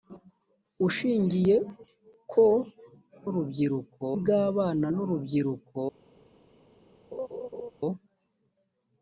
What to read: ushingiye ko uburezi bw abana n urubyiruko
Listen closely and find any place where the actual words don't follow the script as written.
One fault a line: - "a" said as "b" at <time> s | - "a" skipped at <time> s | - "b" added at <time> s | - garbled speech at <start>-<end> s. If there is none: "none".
- "uburezi" said as "urubyiruko" at 3.3 s